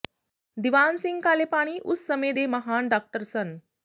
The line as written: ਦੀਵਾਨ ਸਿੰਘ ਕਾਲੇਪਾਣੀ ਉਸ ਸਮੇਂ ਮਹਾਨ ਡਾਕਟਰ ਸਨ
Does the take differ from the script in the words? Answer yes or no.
yes